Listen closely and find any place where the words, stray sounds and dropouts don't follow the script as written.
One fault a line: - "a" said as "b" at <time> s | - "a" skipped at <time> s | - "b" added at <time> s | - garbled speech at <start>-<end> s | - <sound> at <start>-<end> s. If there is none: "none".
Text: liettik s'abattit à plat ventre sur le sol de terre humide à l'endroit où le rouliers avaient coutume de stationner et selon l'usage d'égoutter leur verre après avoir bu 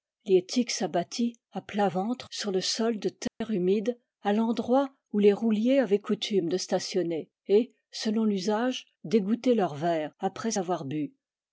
- dropout at 3.3-3.4 s
- "le" said as "les" at 5.2 s